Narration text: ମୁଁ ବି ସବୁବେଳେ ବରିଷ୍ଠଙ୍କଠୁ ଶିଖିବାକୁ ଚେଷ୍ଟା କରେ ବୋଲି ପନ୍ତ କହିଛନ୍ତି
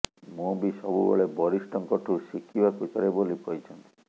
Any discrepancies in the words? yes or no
yes